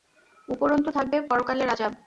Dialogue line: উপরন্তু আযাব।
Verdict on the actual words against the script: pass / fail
fail